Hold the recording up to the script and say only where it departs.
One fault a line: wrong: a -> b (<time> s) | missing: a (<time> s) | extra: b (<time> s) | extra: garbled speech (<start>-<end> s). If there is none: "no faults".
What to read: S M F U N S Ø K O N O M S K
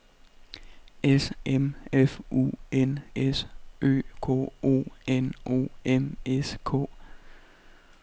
no faults